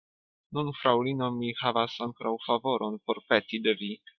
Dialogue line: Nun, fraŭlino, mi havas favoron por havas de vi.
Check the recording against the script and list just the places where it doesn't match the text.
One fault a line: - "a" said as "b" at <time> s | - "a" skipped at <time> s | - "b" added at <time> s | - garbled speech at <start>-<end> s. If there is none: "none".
- "ankoraŭ" added at 2.1 s
- "havas" said as "peti" at 3.3 s